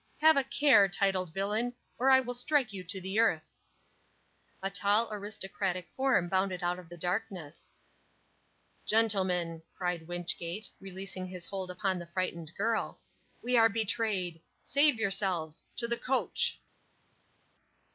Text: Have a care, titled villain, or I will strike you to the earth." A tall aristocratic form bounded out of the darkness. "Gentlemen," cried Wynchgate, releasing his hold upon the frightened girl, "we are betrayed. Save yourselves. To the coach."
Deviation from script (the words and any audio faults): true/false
false